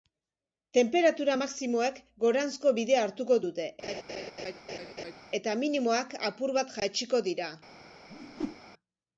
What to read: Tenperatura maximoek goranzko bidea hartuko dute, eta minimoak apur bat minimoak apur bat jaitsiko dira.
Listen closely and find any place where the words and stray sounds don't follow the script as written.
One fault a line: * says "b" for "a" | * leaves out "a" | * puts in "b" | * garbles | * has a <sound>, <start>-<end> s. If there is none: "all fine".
* has a laugh, 3.8-5.2 s
* leaves out "minimoak apur bat"
* has a whoosh, 8.1-8.6 s